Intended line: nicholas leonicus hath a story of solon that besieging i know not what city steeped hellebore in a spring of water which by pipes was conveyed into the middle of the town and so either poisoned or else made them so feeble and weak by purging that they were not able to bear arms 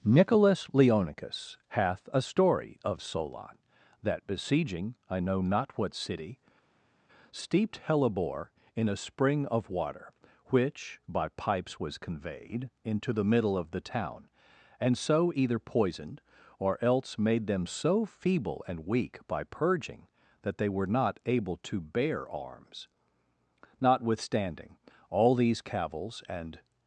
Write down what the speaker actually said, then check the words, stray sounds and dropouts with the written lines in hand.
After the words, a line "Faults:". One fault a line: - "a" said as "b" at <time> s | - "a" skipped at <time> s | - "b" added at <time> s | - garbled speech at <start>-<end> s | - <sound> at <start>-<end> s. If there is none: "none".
nicholas leonicus hath a story of solon that besieging i know not what city steeped hellebore in a spring of water which by pipes was conveyed into the middle of the town and so either poisoned or else made them so feeble and weak by purging that they were not able to bear arms notwithstanding all these cavils and
Faults:
- "notwithstanding all these cavils and" added at 23.8 s